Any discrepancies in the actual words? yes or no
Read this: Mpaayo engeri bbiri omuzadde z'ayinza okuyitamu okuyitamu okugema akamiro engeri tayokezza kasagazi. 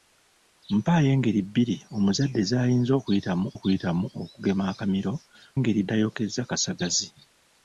no